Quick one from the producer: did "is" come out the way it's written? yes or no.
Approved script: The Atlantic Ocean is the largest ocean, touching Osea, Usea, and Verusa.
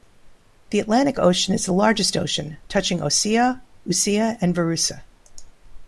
yes